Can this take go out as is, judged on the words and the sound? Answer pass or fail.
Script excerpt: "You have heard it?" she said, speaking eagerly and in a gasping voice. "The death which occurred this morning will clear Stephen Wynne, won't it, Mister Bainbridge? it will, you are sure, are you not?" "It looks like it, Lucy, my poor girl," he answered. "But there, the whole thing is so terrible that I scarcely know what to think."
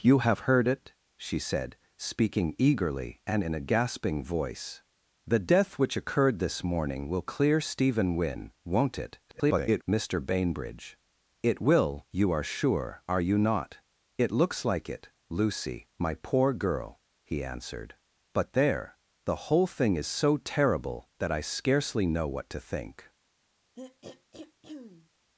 fail